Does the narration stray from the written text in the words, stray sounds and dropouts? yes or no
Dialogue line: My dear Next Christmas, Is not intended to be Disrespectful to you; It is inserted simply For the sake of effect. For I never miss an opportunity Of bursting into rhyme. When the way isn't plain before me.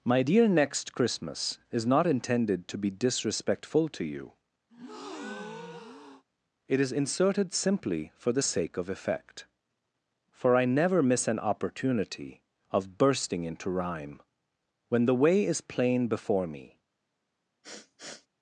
yes